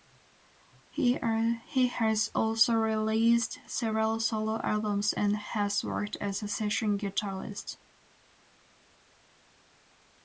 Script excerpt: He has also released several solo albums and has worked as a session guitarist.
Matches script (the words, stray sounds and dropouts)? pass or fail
pass